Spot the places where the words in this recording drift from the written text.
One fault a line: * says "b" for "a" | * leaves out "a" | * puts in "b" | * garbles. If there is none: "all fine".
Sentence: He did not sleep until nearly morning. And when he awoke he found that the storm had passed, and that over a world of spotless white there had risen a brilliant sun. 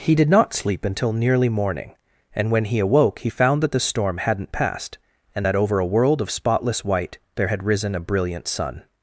* says "hadn't" for "had"